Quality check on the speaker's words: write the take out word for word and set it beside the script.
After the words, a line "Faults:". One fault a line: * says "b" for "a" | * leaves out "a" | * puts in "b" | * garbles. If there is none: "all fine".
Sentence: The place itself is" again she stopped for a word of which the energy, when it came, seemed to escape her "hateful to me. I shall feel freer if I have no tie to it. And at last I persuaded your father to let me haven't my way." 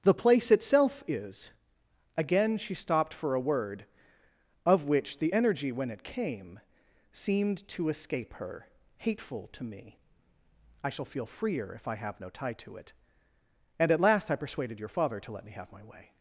The place itself is" again she stopped for a word of which the energy, when it came, seemed to escape her "hateful to me. I shall feel freer if I have no tie to it. And at last I persuaded your father to let me have my way."
Faults:
* says "have" for "haven't"